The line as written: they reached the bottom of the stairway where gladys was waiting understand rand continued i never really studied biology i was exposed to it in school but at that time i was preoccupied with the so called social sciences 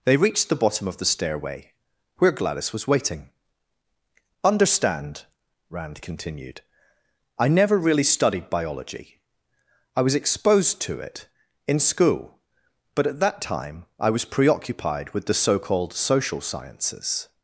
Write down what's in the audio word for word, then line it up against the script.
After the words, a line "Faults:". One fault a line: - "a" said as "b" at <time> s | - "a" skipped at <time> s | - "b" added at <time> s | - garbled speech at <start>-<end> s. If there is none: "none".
they reached the bottom of the stairway where gladys was waiting understand rand continued i never really studied biology i was exposed to it in school but at that time i was preoccupied with the so called social sciences
Faults:
none